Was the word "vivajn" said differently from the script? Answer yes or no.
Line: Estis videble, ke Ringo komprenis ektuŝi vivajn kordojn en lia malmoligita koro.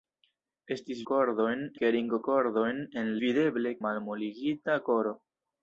yes